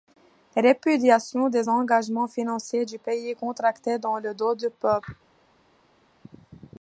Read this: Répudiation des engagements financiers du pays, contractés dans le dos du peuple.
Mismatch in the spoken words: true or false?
false